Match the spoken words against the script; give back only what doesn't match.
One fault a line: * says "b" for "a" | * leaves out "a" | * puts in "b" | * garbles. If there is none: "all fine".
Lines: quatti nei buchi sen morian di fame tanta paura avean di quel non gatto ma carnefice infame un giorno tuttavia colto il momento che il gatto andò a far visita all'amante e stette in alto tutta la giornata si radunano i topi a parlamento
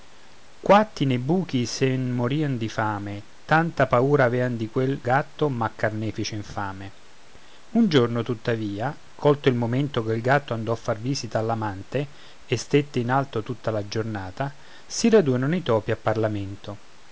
* leaves out "non"